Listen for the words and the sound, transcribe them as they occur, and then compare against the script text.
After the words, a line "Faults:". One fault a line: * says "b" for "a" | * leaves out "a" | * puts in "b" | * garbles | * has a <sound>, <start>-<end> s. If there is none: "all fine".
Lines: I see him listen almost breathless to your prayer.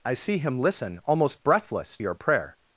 I see him listen almost breathless your prayer.
Faults:
* leaves out "to"